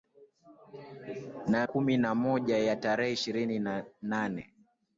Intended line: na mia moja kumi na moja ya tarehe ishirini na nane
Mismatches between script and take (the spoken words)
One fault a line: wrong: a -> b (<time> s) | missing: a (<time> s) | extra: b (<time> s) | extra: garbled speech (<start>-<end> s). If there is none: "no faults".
missing: mia moja (1.7 s)